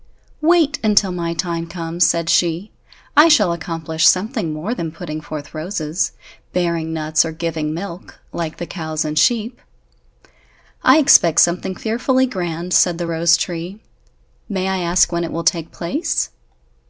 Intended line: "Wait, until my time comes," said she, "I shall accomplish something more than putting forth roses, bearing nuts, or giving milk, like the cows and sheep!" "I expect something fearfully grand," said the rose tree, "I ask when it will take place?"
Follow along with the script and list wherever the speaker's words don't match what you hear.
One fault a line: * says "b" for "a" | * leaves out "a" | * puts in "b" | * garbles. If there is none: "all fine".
* puts in "may"